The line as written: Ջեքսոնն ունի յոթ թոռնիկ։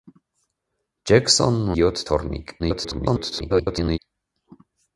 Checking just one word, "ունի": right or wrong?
wrong